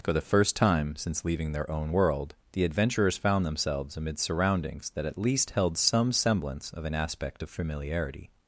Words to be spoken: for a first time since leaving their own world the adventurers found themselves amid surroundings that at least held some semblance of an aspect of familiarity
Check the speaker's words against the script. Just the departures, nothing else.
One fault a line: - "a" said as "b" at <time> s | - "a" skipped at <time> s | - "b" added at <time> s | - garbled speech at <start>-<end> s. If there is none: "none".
- "a" said as "the" at 0.1 s